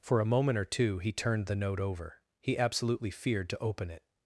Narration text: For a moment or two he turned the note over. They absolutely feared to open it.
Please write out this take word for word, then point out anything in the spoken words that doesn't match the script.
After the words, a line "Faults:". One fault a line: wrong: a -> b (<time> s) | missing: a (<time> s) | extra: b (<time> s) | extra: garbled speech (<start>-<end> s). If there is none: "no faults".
For a moment or two he turned the note over. He absolutely feared to open it.
Faults:
wrong: They -> He (2.4 s)